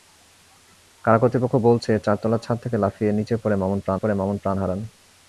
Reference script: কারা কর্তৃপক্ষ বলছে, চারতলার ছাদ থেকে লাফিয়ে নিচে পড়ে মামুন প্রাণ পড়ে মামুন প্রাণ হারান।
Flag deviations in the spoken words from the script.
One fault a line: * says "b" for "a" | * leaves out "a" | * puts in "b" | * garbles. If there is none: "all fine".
all fine